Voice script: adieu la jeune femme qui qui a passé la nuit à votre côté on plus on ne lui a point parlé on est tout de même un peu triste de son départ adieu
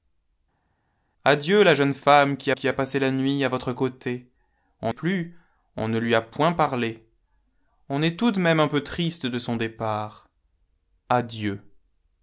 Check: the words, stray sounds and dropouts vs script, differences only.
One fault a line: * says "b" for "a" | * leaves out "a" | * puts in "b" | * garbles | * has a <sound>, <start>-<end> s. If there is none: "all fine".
all fine